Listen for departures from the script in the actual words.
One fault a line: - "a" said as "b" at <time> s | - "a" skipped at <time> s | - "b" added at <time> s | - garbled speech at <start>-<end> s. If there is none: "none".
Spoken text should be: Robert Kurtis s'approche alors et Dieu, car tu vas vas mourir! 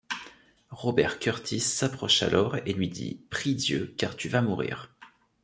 - "lui dit Prie" added at 2.7 s
- "vas" skipped at 4.4 s